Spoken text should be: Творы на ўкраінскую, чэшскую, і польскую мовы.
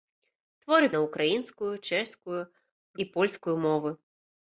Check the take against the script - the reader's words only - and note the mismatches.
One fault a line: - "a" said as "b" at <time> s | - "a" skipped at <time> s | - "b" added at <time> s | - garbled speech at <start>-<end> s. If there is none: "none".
none